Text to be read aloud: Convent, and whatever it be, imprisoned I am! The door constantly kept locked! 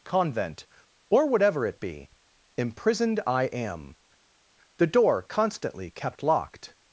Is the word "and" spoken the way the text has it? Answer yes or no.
no